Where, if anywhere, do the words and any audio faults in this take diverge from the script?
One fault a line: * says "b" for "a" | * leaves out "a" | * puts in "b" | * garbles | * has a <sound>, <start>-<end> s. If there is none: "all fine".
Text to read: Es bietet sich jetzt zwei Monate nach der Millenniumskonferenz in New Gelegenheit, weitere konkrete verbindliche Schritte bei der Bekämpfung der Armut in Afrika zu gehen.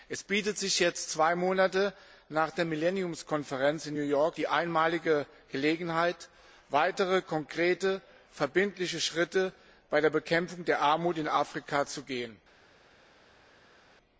* puts in "York die einmalige"